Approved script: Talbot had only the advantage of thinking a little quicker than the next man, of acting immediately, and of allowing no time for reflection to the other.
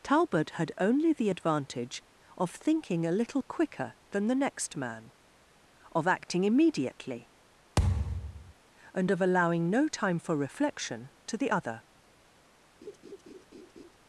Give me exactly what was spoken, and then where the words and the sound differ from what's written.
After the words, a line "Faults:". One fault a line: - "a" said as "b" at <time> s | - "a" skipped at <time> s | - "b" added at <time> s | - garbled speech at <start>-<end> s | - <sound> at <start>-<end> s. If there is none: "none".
Talbot had only the advantage of thinking a little quicker than the next man, of acting immediately, and of allowing no time for reflection to the other.
Faults:
- thud at 7.8-8.5 s
- laugh at 12.8-14.0 s